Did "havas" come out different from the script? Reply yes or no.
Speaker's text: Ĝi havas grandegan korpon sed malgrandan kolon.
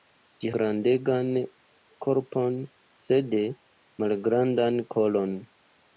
yes